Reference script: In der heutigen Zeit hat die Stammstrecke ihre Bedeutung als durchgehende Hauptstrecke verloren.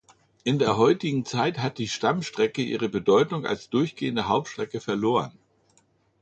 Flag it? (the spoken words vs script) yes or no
no